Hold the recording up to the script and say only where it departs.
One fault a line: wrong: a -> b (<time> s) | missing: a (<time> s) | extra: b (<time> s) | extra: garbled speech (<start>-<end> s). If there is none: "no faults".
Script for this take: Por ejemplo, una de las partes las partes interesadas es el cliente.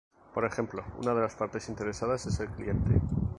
missing: las partes (1.7 s)